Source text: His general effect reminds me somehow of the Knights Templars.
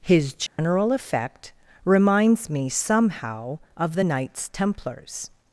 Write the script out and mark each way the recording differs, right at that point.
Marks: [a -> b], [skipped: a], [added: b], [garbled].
His general effect reminds me somehow of the Knights Templars.